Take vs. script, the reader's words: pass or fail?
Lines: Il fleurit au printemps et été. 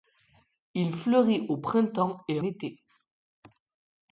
pass